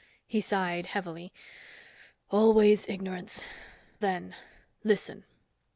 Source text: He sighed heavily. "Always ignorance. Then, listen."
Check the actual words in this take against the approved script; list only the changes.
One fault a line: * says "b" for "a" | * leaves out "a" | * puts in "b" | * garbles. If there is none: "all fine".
all fine